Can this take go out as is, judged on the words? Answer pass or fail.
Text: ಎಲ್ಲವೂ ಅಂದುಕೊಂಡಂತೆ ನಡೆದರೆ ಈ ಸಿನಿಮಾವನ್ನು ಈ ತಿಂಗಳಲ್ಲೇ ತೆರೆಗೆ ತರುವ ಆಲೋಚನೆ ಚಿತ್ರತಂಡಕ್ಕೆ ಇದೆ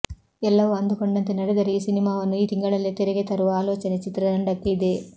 pass